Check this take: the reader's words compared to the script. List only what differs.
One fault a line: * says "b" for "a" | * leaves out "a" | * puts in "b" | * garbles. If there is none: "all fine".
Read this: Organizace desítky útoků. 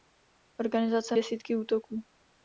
all fine